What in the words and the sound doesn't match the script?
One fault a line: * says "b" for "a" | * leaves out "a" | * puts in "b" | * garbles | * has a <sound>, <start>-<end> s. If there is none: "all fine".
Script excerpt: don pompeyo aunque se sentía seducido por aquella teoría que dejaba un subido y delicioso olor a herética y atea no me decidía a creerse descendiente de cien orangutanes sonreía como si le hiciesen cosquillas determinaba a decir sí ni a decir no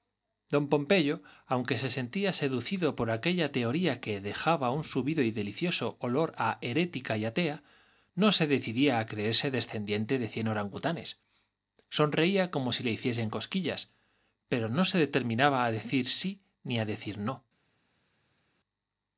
* says "se" for "me"
* puts in "pero no se"